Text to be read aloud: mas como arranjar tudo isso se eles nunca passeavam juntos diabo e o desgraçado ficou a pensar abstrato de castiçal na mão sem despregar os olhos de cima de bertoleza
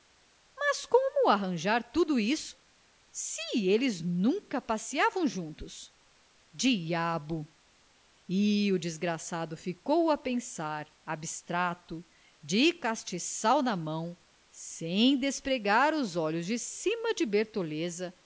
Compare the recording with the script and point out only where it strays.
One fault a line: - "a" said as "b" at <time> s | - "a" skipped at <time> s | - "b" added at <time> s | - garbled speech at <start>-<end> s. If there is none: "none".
none